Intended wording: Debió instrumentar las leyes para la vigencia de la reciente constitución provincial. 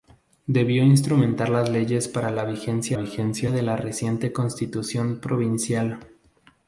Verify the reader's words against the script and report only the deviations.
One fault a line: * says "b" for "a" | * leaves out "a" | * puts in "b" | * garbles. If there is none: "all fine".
* puts in "vigencia"